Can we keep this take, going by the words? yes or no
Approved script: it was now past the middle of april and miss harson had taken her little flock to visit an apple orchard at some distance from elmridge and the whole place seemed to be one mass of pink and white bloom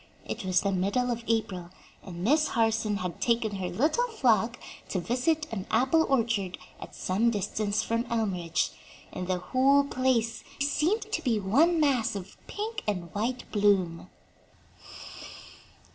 no